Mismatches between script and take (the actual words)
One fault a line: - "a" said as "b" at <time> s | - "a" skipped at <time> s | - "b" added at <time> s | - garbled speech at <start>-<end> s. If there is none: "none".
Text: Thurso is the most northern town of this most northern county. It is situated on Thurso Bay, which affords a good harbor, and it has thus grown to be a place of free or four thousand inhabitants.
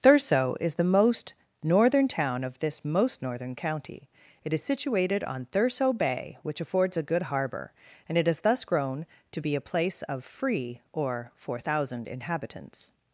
none